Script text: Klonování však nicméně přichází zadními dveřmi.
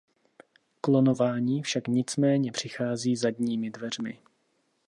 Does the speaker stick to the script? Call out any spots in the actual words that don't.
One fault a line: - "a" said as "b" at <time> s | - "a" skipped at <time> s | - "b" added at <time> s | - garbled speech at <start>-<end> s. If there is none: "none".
none